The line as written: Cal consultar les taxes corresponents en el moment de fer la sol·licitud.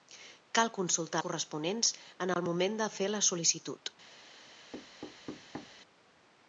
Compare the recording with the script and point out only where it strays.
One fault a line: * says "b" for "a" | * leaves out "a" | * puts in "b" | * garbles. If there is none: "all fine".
* leaves out "les taxes"